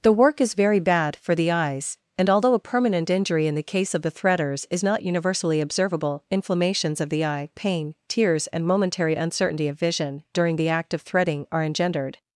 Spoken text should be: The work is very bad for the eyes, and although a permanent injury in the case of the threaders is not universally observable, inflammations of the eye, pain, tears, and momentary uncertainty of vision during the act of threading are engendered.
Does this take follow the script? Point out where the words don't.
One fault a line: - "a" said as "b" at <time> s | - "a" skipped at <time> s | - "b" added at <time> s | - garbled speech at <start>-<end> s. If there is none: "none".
none